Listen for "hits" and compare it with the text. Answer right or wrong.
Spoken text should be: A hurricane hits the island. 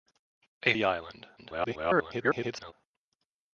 wrong